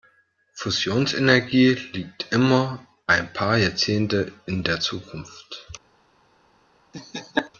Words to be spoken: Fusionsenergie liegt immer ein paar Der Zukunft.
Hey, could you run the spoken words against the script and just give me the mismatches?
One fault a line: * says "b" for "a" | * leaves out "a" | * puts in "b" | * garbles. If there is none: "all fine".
* puts in "Jahrzehnte in"